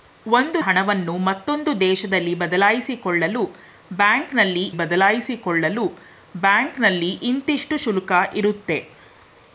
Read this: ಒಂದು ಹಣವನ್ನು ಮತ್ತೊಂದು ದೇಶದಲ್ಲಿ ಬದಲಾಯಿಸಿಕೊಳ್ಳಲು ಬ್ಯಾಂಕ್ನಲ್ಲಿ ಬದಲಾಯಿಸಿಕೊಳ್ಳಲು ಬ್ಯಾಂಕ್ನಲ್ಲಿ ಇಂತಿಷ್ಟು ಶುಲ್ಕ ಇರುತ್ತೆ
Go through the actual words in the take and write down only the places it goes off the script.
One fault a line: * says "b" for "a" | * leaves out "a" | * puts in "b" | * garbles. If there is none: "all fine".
all fine